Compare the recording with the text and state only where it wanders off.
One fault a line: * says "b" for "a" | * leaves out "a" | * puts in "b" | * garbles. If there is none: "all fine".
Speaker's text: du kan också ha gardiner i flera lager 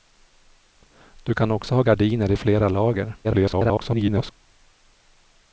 * garbles